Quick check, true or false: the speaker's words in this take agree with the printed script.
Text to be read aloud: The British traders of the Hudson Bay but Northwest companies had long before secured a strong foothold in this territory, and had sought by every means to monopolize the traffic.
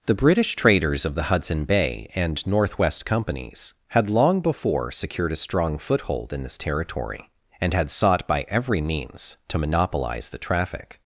false